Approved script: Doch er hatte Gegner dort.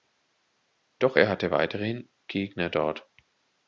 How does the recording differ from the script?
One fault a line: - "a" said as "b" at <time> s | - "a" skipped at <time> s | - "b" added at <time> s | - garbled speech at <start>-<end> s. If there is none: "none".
- "weiterhin" added at 1.5 s